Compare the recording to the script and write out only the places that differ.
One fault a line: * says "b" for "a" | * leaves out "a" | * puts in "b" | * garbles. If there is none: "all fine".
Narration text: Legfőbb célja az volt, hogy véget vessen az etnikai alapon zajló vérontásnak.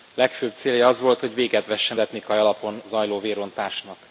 * leaves out "az"